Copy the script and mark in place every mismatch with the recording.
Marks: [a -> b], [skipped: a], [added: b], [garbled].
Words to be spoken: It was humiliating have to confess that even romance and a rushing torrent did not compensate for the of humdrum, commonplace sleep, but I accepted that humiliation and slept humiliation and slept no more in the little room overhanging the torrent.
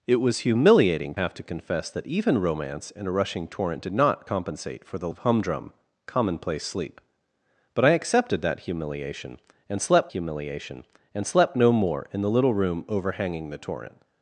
It was humiliating have to confess that even romance and a rushing torrent did not compensate for the of humdrum, commonplace sleep, but I accepted that humiliation and slept humiliation and slept no more in the little room overhanging the torrent.